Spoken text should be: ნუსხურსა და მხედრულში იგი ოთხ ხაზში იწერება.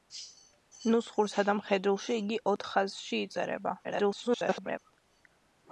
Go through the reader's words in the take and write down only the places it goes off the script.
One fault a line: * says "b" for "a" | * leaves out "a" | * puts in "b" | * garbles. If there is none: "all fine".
* garbles